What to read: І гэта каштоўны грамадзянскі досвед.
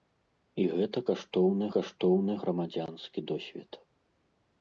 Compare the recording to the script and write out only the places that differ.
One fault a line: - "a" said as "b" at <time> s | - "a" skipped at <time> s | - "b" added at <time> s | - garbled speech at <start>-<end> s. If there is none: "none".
- "каштоўны" added at 1.7 s